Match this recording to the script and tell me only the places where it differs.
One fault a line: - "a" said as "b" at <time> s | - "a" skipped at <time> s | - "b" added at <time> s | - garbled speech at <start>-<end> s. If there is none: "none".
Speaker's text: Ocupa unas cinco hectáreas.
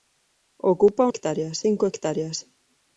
- "unas" said as "hectáreas" at 1.1 s